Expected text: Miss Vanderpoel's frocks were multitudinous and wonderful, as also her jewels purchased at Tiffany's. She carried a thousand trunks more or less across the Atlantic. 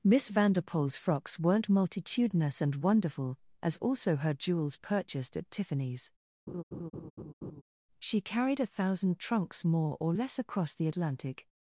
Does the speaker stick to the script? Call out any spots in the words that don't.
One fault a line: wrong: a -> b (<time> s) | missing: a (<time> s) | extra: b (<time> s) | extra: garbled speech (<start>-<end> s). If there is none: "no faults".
wrong: were -> weren't (1.4 s)